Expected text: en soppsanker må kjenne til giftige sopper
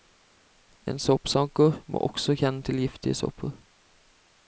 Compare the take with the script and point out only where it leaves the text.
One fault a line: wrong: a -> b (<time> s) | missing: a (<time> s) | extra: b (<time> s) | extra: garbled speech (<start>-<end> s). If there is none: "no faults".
extra: også (2.1 s)